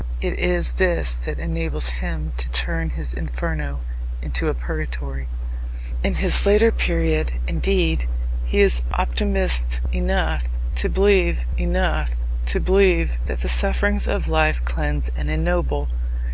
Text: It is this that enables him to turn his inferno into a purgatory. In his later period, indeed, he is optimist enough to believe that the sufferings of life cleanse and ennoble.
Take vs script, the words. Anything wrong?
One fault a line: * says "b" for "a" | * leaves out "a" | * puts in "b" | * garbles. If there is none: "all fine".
* puts in "enough to believe"